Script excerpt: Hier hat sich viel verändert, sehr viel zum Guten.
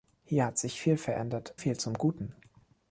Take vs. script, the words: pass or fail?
fail